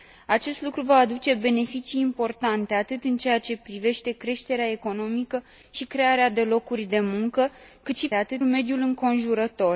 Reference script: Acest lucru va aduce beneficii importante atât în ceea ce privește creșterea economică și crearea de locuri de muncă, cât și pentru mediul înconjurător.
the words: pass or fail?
fail